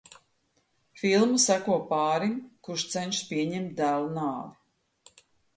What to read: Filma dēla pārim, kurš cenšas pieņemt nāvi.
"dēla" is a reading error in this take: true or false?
true